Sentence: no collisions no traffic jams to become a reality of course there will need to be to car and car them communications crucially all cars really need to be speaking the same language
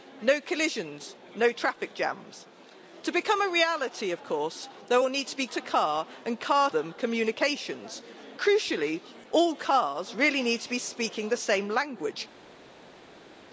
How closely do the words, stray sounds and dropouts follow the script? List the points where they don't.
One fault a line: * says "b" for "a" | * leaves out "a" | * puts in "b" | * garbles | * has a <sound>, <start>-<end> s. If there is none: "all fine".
all fine